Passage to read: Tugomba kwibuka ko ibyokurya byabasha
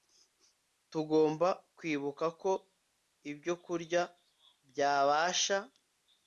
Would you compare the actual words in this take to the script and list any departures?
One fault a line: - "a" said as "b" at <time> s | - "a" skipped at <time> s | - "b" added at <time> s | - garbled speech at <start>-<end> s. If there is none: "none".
none